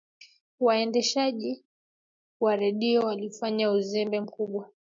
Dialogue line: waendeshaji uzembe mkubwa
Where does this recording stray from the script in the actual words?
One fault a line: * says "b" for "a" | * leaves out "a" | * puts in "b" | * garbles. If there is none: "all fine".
* puts in "wa redio walifanya"